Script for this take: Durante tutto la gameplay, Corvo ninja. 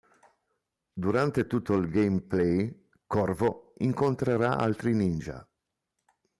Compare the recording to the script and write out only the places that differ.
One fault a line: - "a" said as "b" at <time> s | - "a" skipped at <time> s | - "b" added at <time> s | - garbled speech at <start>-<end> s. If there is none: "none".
- "la" said as "il" at 1.8 s
- "incontrerà altri" added at 3.8 s